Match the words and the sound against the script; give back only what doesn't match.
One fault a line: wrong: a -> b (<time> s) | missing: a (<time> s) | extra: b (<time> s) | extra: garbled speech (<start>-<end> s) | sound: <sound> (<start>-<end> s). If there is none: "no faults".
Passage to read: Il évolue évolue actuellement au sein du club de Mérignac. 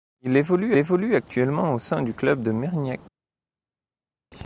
no faults